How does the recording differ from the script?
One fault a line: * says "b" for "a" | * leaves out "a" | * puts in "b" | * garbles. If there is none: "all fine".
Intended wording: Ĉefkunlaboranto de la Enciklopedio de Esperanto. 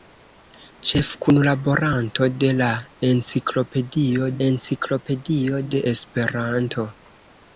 * puts in "Enciklopedio"